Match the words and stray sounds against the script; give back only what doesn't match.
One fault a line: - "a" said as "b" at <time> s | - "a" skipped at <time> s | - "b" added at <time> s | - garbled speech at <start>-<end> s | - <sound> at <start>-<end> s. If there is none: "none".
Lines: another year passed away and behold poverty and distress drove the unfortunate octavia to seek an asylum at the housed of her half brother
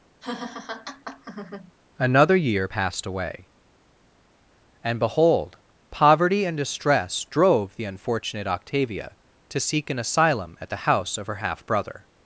- laugh at 0.2-1.7 s
- "housed" said as "house" at 10.9 s